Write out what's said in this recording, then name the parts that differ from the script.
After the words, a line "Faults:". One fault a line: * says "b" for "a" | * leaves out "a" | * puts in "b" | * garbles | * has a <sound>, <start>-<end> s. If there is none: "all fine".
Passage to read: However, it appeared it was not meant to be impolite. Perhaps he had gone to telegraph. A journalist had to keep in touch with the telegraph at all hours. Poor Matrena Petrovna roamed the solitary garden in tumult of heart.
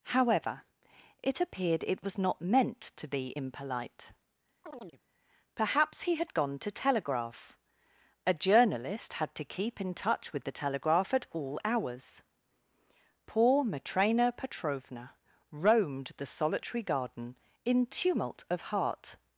However, it appeared it was not meant to be impolite. Perhaps he had gone to telegraph. A journalist had to keep in touch with the telegraph at all hours. Poor Matrena Petrovna roamed the solitary garden in tumult of heart.
Faults:
* has a chirp, 4.6-5.0 s